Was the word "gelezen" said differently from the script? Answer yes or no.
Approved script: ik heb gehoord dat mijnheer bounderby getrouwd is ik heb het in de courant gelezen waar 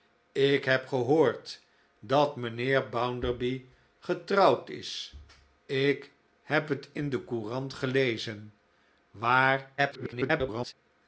no